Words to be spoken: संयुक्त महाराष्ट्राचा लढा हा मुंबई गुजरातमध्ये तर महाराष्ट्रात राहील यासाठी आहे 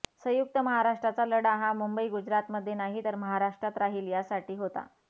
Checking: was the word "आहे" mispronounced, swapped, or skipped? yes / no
yes